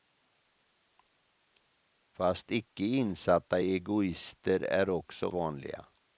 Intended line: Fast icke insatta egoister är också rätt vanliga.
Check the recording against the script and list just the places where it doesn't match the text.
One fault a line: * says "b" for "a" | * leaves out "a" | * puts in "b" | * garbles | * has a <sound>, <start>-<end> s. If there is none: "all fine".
* leaves out "rätt"